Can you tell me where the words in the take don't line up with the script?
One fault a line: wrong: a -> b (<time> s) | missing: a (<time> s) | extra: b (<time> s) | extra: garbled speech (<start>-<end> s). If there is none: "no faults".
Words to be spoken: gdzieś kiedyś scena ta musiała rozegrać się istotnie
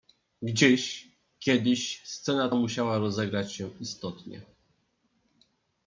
missing: ta (2.5 s)